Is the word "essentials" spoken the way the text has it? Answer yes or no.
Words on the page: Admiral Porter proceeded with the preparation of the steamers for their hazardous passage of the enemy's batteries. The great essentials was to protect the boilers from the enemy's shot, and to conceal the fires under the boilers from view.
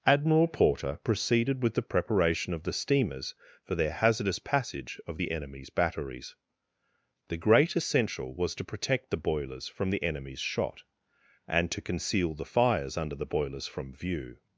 no